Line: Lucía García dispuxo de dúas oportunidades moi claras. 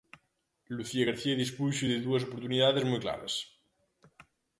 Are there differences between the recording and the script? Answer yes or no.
no